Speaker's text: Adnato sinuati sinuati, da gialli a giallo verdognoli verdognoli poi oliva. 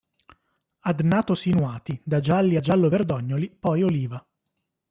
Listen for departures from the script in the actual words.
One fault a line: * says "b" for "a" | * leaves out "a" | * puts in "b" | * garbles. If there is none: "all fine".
* leaves out "sinuati"
* leaves out "verdognoli"